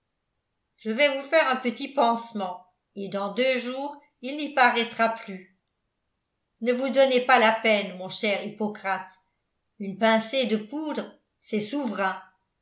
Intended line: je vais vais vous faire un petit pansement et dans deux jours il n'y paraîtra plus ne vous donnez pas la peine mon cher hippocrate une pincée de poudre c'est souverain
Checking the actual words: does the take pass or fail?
fail